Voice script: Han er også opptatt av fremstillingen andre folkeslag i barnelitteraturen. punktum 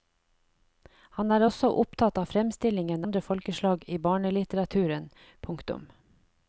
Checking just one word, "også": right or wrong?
right